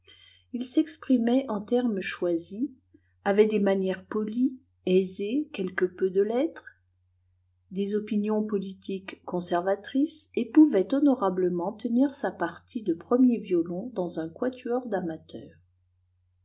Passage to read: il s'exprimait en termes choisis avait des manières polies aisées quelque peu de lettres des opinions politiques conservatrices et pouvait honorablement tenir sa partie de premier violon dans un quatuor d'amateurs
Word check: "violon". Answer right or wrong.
right